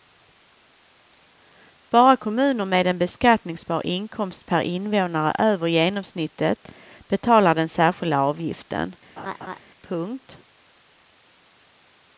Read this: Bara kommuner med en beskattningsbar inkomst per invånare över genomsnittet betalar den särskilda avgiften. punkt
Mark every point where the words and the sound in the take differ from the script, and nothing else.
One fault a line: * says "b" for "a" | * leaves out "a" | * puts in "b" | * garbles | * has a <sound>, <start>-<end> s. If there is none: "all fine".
* has a laugh, 9.2-9.6 s